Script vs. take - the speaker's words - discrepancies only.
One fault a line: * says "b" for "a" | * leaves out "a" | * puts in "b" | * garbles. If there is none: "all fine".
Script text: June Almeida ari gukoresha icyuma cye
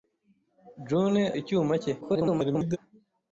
* leaves out "Almeida ari gukoresha"
* garbles